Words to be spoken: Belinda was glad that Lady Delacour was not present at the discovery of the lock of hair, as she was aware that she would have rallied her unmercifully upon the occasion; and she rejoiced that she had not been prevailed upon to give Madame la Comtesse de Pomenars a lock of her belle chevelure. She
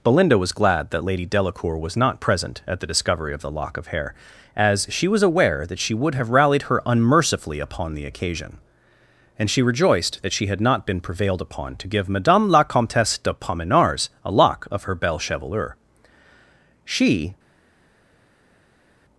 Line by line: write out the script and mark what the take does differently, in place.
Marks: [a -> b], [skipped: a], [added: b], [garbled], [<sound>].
Belinda was glad that Lady Delacour was not present at the discovery of the lock of hair, as she was aware that she would have rallied her unmercifully upon the occasion; and she rejoiced that she had not been prevailed upon to give Madame la Comtesse de Pomenars a lock of her belle chevelure. She